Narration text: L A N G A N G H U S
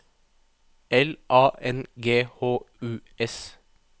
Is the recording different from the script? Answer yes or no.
yes